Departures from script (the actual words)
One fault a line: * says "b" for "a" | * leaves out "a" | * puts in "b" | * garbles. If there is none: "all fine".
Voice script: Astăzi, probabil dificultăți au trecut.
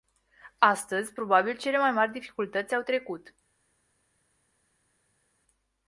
* puts in "cele mai mari"